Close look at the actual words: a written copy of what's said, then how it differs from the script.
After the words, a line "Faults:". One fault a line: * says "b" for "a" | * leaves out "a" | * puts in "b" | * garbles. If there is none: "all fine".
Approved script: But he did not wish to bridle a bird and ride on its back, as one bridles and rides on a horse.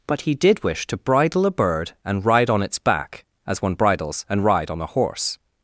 But he did wish to bridle a bird and ride on its back, as one bridles and ride on a horse.
Faults:
* leaves out "not"
* says "ride" for "rides"